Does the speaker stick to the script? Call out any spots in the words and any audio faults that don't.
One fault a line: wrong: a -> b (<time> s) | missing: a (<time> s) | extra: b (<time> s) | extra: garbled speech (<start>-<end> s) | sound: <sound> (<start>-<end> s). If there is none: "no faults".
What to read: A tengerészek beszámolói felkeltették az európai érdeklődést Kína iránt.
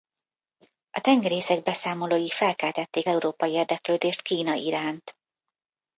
missing: az (3.1 s)